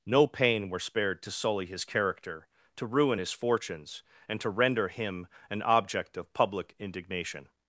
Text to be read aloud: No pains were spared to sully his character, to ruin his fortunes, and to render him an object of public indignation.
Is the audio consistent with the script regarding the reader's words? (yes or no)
no